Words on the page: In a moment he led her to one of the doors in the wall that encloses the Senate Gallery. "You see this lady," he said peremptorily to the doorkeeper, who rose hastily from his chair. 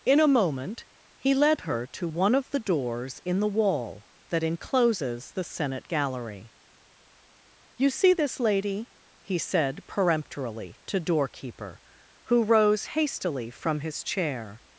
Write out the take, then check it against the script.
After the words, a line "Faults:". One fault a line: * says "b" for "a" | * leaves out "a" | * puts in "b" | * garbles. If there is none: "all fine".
In a moment he led her to one of the doors in the wall that encloses the Senate Gallery. "You see this lady," he said peremptorily to doorkeeper, who rose hastily from his chair.
Faults:
* leaves out "the"